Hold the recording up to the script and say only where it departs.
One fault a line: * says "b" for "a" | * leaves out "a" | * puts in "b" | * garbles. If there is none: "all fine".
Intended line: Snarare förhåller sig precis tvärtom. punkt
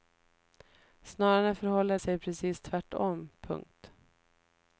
all fine